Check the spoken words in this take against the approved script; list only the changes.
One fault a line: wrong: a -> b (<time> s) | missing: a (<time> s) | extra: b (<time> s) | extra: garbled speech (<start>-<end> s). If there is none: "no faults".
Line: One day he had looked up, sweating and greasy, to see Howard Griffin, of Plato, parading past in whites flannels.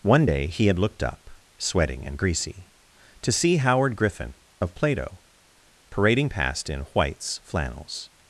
no faults